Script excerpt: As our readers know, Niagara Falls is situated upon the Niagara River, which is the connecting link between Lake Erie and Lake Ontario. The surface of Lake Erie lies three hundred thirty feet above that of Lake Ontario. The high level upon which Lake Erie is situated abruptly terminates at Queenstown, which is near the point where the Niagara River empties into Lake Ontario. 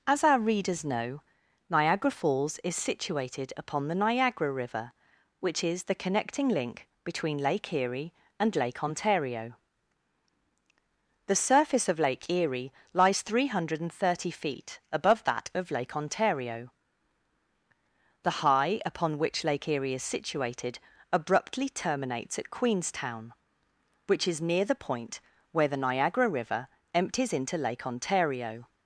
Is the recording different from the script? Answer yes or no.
yes